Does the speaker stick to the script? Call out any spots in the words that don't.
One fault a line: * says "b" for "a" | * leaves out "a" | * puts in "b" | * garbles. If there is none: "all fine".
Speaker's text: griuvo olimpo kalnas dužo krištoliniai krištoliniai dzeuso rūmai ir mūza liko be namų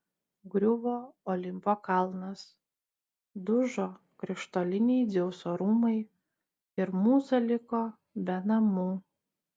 * leaves out "krištoliniai"